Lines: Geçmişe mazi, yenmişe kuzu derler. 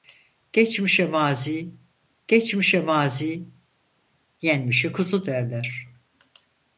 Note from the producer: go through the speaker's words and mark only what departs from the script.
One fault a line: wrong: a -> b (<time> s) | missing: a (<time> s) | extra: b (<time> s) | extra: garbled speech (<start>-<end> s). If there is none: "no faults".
extra: geçmişe mazi (2.3 s)